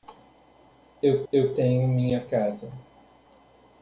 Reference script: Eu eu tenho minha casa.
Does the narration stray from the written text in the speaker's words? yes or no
no